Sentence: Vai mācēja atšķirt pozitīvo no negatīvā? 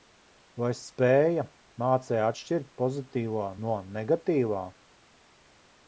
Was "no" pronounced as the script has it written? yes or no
yes